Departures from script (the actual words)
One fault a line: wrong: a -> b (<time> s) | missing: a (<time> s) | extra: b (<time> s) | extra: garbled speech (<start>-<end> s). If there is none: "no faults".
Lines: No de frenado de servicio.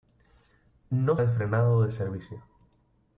no faults